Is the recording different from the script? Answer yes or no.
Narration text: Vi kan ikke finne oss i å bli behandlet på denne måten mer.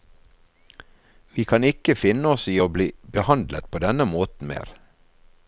no